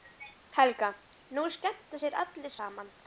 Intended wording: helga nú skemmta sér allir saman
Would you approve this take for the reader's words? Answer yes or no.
yes